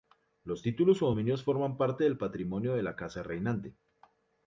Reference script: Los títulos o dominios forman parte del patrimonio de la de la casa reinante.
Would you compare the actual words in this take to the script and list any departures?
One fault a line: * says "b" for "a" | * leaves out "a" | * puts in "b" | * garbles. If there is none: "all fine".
* leaves out "de la"